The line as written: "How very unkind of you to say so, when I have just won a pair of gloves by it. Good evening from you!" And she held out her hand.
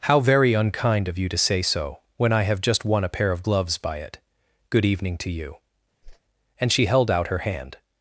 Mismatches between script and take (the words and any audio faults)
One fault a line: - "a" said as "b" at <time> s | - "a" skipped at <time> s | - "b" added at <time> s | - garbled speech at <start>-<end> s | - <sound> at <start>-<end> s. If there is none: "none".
- "from" said as "to" at 5.2 s
- whoosh at 6.0-6.2 s